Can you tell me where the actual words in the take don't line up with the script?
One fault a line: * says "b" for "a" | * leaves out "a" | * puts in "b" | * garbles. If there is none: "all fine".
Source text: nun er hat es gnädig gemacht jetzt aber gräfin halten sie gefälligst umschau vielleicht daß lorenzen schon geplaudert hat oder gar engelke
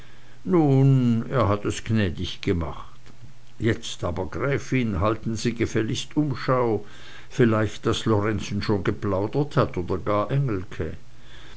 all fine